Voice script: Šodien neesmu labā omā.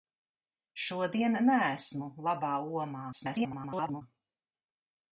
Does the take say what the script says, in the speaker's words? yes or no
no